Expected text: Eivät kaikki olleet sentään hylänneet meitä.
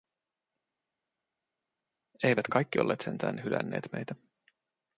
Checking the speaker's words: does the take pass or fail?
pass